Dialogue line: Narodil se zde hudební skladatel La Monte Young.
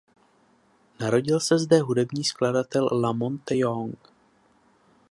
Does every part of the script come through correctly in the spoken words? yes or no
yes